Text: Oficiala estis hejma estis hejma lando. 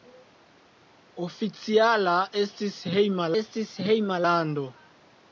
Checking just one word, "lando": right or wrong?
right